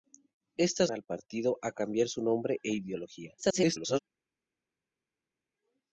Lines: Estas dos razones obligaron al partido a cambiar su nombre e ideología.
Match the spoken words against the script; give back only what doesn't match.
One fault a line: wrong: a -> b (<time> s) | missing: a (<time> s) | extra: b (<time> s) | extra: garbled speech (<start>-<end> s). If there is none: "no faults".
missing: dos razones obligaron (0.9 s)
extra: garbled speech (3.4-4.0 s)